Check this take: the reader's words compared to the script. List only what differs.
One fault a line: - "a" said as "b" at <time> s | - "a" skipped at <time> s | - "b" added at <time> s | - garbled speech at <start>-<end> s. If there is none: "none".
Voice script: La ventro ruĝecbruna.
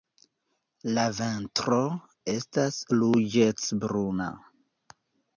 - "estas" added at 2.3 s